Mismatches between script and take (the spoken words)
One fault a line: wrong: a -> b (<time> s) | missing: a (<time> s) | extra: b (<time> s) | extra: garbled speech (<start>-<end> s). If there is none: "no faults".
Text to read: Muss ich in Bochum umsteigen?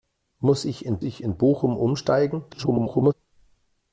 extra: ich in (1.0 s)
extra: garbled speech (2.5-3.1 s)